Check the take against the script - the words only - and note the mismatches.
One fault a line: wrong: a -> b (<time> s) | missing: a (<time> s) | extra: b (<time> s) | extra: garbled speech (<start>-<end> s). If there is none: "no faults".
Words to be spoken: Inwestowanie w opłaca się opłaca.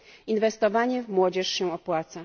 wrong: opłaca -> młodzież (1.1 s)